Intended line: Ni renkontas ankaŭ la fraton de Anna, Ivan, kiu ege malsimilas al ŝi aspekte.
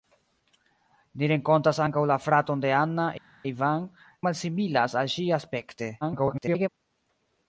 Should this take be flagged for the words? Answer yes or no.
yes